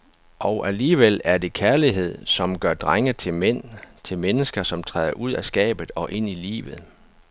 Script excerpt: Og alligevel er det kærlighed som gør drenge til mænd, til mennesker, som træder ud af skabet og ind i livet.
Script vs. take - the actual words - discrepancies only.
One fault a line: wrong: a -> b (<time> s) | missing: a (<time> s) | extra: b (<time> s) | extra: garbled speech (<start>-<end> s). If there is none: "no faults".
no faults